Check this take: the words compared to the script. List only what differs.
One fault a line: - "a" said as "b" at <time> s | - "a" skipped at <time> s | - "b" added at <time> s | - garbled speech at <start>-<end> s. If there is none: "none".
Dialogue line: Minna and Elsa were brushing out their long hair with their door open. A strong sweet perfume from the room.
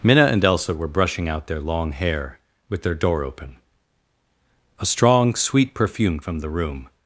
none